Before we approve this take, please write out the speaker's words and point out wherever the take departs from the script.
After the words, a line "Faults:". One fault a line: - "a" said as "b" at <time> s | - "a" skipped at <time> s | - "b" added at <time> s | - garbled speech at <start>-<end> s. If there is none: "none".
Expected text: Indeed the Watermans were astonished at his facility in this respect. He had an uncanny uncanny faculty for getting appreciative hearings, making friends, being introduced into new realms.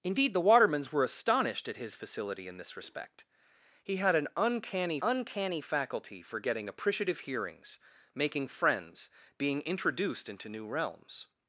Indeed the Watermans were astonished at his facility in this respect. He had an uncanny uncanny faculty for getting appreciative hearings, making friends, being introduced into new realms.
Faults:
none